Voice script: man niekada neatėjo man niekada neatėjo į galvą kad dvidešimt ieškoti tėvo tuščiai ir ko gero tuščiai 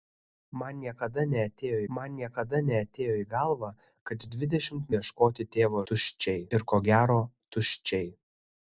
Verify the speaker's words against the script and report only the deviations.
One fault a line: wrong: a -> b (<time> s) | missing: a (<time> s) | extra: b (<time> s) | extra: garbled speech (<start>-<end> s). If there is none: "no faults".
no faults